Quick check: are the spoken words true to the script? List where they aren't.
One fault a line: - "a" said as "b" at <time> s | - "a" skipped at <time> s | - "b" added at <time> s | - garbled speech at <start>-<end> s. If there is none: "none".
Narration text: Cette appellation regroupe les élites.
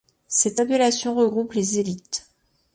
none